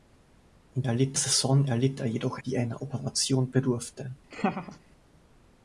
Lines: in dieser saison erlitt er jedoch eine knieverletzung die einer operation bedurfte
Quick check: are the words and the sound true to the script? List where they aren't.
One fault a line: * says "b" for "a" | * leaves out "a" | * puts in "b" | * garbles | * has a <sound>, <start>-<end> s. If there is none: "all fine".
* says "erlitt" for "dieser"
* leaves out "eine knieverletzung"
* has a laugh, 4.3-4.8 s